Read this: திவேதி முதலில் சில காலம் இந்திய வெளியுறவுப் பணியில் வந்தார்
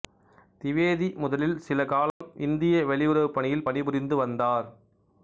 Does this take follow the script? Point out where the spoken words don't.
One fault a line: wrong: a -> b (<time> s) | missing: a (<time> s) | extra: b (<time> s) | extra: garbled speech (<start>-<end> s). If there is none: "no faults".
extra: பணிபுரிந்து (3.6 s)